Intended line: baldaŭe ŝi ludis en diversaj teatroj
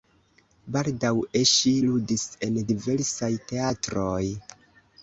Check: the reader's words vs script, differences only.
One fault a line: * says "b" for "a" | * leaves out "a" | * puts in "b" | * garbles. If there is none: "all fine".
all fine